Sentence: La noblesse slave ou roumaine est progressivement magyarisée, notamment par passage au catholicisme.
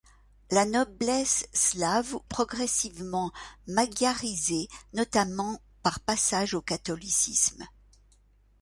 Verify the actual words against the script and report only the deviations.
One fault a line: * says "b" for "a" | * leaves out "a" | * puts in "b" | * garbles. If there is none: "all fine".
* leaves out "ou roumaine est"